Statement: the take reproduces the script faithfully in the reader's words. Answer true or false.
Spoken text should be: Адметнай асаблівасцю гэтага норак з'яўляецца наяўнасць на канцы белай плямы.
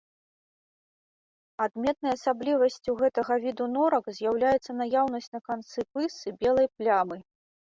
false